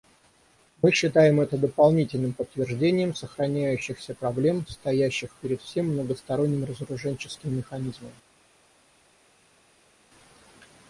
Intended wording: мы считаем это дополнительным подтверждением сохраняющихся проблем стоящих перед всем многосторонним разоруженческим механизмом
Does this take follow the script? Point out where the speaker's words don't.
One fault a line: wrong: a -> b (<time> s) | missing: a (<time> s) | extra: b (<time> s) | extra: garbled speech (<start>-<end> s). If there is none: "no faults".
no faults